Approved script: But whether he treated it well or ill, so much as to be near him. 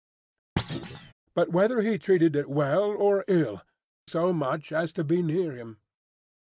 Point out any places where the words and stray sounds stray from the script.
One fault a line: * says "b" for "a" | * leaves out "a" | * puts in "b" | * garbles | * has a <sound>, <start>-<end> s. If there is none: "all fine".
* has a thud, 0.6-1.1 s